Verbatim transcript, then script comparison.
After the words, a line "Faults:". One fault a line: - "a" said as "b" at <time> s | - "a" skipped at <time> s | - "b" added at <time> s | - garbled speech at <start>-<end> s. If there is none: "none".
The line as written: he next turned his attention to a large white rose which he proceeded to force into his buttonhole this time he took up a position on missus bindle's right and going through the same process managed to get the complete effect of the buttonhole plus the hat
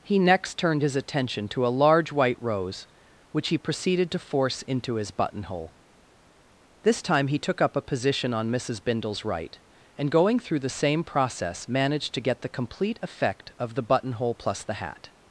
he next turned his attention to a large white rose which he proceeded to force into his buttonhole this time he took up a position on missus bindle's right and going through the same process managed to get the complete effect of the buttonhole plus the hat
Faults:
none